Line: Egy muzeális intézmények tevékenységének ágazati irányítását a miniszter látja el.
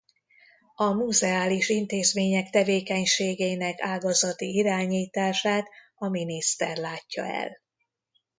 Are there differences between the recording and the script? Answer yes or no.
yes